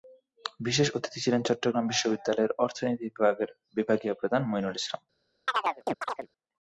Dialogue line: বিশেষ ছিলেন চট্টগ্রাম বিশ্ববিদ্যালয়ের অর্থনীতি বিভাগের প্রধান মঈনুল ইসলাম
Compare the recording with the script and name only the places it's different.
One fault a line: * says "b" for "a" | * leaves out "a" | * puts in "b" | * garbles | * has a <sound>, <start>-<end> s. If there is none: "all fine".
* puts in "অতিথি"
* puts in "বিভাগীয়"
* has a chirp, 5.5-6.3 s